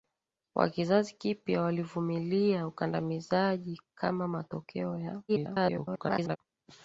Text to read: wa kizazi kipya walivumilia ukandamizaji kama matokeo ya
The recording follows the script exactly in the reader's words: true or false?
false